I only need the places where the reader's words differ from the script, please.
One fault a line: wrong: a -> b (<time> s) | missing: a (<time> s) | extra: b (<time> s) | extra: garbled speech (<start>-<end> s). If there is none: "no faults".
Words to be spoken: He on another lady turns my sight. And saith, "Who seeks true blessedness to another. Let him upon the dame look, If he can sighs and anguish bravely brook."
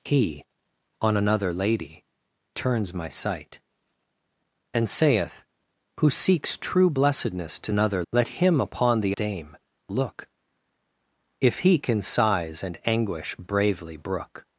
no faults